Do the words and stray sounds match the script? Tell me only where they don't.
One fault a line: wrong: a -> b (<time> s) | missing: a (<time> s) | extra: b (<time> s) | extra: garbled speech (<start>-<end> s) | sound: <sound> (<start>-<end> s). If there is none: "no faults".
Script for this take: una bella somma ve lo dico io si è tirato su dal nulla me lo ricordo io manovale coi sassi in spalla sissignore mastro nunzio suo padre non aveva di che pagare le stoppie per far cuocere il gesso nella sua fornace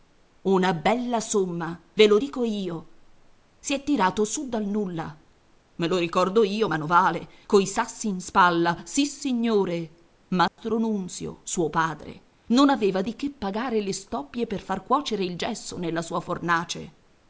sound: dropout (10.5-10.6 s)